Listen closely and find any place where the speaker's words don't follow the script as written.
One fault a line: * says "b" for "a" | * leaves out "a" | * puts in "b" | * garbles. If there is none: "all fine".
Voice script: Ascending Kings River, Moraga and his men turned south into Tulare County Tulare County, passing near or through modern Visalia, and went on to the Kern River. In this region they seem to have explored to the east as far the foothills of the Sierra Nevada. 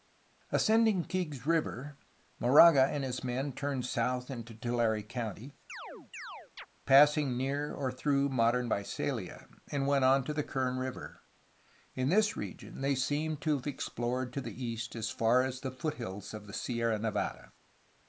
* leaves out "Tulare County"
* puts in "as"